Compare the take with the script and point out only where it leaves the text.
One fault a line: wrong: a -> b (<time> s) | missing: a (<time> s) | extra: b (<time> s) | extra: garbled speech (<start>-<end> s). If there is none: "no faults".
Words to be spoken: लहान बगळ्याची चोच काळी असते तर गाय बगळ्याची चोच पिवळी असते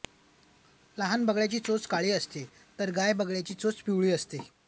no faults